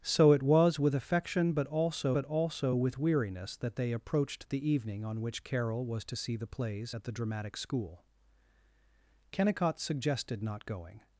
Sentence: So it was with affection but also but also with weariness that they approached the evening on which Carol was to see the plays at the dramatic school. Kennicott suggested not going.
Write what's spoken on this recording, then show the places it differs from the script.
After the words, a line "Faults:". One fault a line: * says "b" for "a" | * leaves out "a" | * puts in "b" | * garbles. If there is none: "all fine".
So it was with affection but also but also with weariness that they approached the evening on which Carol was to see the plays at the dramatic school. Kennicott suggested not going.
Faults:
all fine